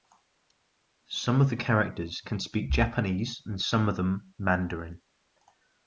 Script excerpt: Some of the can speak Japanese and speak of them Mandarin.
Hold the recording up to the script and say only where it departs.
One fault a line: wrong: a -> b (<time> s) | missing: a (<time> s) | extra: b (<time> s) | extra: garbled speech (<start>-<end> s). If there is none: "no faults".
extra: characters (1.6 s)
wrong: speak -> some (3.6 s)